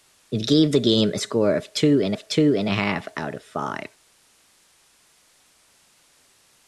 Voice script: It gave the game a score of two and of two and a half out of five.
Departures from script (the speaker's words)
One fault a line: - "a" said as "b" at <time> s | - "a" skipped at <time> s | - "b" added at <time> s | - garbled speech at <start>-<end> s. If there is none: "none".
none